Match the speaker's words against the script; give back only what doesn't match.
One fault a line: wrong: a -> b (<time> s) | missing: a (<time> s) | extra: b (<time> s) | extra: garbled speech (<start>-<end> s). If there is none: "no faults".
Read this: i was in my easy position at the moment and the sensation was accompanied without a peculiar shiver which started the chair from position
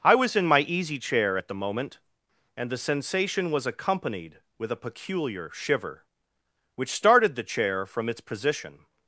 wrong: position -> chair (1.0 s)
wrong: without -> with (4.6 s)
extra: its (8.1 s)